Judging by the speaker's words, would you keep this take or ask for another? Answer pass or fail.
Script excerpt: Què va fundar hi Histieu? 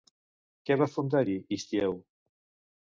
pass